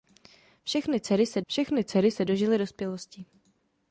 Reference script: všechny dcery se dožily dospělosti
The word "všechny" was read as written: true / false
true